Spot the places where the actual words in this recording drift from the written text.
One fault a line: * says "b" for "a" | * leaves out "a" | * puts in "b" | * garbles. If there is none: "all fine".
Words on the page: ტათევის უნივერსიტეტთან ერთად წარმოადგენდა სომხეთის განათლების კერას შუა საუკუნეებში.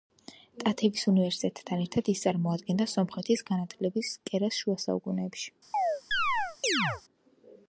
* puts in "ის"